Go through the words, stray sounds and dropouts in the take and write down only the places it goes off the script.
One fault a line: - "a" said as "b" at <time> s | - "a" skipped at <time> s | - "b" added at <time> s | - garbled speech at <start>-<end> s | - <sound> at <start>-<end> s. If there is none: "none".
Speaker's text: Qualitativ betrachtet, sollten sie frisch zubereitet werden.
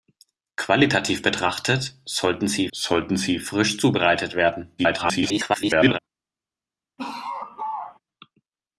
- "sollten sie" added at 2.7 s
- garbled speech at 4.8-6.0 s
- laugh at 7.0-8.0 s